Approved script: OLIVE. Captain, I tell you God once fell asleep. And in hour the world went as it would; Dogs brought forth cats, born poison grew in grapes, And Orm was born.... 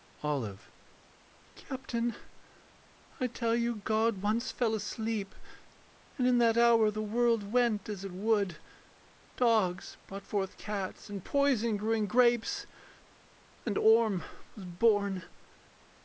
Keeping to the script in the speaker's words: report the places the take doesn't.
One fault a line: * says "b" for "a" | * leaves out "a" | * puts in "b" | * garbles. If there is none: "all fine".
* puts in "that"
* says "and" for "born"